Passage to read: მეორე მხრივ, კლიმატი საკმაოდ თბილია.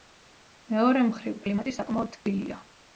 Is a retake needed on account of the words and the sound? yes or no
no